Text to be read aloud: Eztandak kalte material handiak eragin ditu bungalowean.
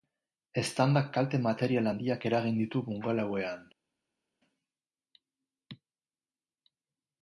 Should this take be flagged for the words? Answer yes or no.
no